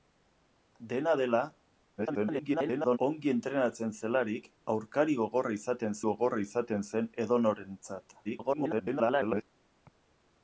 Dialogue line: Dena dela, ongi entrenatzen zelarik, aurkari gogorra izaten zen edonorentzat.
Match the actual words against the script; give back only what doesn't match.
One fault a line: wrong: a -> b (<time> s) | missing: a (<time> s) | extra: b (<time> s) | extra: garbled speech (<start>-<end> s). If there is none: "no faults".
extra: garbled speech (2.0-3.0 s)
extra: gogorra izaten (6.1 s)
extra: garbled speech (8.2-9.4 s)